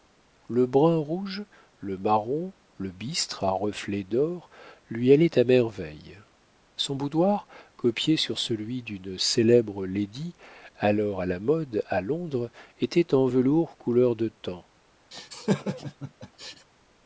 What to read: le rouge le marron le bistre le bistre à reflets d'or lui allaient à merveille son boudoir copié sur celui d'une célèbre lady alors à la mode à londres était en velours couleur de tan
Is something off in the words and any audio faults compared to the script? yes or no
yes